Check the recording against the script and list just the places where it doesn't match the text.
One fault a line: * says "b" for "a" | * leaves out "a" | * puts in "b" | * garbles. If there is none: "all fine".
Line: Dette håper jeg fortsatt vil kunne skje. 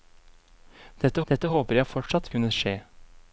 * puts in "dette"
* leaves out "vil"